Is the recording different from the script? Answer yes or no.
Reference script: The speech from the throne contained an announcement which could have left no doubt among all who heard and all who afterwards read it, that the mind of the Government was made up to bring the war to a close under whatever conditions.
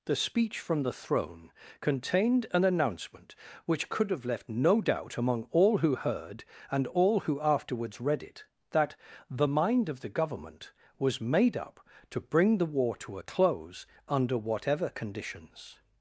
no